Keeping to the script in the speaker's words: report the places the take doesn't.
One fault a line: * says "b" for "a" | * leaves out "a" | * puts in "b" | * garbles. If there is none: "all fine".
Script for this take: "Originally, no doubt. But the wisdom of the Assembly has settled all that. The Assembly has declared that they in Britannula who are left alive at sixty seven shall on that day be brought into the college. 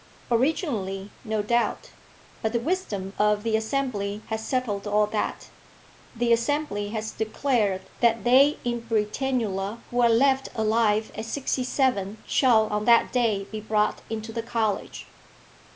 all fine